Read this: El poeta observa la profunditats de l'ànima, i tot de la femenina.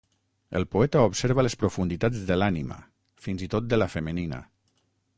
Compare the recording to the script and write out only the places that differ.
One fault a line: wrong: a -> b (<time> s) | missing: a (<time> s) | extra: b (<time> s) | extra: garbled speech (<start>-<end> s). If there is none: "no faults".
wrong: la -> les (1.4 s)
extra: fins (3.3 s)